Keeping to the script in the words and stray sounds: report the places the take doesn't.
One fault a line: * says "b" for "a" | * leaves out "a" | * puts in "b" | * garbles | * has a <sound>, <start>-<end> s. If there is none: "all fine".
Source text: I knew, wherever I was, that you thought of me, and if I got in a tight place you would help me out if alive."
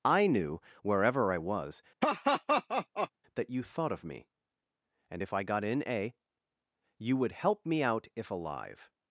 * has a laugh, 2.0-3.1 s
* leaves out "tight place"